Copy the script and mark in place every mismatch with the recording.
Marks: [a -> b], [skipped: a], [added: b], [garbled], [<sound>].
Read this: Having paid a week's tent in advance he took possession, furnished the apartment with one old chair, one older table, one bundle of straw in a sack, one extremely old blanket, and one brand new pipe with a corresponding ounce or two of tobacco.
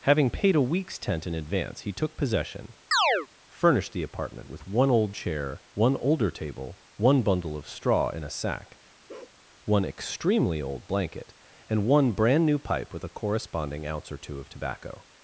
Having paid a week's tent in advance he took possession, [chirp] furnished the apartment with one old chair, one older table, one bundle of straw in a sack, [bark] one extremely old blanket, and one brand new pipe with a corresponding ounce or two of tobacco.